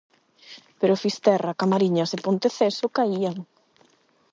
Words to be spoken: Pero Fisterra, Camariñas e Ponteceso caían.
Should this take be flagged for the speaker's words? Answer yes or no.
no